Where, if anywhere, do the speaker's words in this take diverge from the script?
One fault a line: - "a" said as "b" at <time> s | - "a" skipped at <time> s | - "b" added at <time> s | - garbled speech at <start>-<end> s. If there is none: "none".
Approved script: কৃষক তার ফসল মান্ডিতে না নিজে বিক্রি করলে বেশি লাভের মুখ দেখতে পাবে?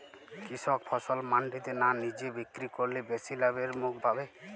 - "তার" skipped at 0.8 s
- "দেখতে" skipped at 3.9 s